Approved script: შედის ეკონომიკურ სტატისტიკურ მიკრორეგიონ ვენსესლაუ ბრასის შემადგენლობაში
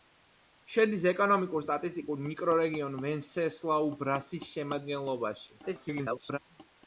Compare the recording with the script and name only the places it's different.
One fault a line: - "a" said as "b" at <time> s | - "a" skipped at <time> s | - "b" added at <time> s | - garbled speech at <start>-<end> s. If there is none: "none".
- garbled speech at 5.6-6.4 s